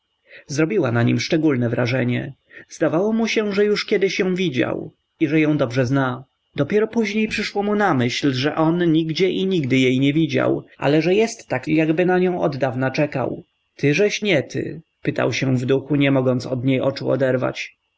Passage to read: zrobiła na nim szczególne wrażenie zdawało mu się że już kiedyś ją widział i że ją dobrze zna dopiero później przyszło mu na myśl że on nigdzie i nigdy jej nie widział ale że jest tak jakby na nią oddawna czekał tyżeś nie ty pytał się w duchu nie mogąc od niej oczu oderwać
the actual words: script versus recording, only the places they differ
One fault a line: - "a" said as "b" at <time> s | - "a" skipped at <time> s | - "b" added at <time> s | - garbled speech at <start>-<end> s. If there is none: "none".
none